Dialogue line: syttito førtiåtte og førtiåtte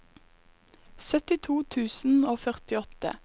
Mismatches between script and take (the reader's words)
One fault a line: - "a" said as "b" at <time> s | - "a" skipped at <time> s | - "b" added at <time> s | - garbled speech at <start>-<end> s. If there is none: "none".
- "førtiåtte" said as "tusen" at 1.8 s